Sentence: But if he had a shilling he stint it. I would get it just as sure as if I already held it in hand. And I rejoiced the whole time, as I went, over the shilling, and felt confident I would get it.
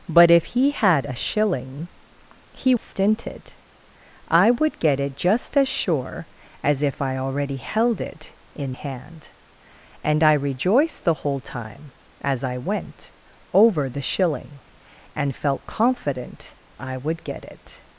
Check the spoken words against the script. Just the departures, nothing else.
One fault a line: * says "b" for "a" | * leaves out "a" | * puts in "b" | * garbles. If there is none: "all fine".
all fine